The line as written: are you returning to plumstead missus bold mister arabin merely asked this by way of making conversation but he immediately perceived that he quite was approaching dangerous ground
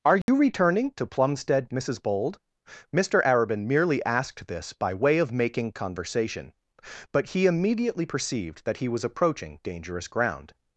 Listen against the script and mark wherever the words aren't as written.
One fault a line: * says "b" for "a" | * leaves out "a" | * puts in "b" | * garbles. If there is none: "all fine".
* leaves out "quite"